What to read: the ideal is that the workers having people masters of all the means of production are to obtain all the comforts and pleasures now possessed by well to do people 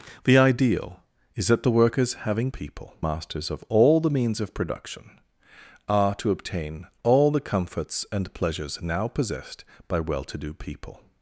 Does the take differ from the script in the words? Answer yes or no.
no